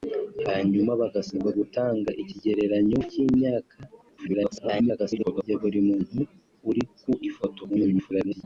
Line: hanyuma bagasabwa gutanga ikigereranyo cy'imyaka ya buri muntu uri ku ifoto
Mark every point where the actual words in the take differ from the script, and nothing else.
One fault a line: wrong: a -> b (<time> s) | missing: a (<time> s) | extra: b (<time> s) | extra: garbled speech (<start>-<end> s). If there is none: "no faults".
extra: garbled speech (4.2-5.4 s)
extra: garbled speech (7.7-8.4 s)